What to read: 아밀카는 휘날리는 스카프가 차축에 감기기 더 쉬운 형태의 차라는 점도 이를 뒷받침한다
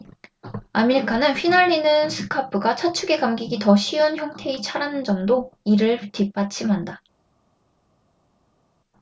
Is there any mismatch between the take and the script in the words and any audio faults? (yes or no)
no